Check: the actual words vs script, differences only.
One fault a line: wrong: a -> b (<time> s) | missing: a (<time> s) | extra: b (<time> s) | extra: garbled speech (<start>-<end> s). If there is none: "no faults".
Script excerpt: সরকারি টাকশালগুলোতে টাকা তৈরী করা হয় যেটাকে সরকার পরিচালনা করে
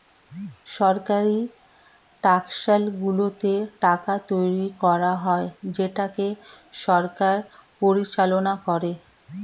no faults